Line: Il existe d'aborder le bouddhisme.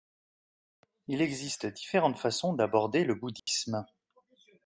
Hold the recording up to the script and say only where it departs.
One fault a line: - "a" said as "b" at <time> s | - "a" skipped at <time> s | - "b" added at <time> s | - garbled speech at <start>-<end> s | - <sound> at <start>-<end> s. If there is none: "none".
- "différentes façons" added at 1.7 s
- dropout at 3.4-3.5 s